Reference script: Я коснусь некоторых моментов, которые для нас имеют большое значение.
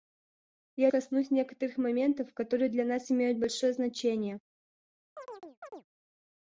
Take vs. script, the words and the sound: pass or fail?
fail